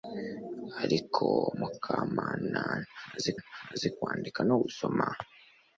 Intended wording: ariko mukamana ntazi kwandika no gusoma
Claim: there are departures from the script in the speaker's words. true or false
true